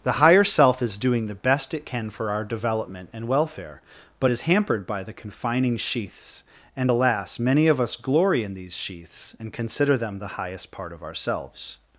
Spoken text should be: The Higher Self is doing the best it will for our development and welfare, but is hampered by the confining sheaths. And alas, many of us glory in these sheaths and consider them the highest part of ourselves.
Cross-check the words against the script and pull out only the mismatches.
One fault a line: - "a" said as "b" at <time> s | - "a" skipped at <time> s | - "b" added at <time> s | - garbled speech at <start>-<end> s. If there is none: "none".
- "will" said as "can" at 1.9 s